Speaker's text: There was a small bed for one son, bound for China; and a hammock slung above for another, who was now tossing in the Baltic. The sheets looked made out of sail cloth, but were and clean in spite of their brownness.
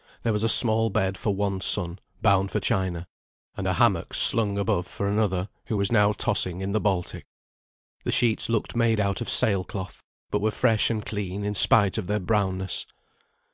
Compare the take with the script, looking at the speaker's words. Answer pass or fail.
fail